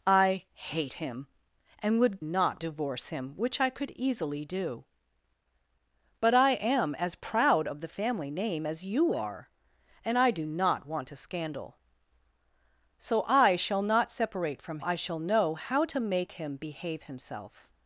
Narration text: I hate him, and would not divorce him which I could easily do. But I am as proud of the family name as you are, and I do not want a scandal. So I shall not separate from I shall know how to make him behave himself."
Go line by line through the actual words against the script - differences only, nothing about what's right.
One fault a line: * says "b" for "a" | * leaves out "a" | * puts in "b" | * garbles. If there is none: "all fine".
all fine